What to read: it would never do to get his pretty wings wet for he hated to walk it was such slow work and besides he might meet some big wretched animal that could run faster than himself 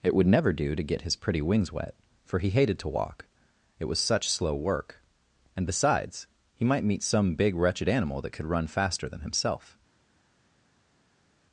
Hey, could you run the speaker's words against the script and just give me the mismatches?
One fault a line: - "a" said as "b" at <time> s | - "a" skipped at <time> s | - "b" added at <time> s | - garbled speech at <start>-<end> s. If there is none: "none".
none